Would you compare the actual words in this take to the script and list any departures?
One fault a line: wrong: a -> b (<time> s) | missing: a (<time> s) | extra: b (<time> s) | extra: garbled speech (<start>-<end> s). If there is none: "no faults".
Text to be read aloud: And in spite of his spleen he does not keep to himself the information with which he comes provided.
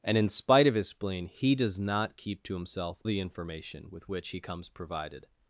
no faults